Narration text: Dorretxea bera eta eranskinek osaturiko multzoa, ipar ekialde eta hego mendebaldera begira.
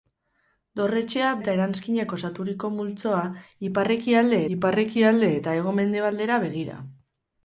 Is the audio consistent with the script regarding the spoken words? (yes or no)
no